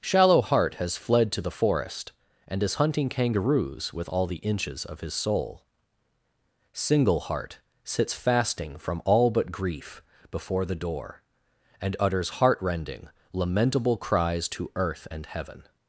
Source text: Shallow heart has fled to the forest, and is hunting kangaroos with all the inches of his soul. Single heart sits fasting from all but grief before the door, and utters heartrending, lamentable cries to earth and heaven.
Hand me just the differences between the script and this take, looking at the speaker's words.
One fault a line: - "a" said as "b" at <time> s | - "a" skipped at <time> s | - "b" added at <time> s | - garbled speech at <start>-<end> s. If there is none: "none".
none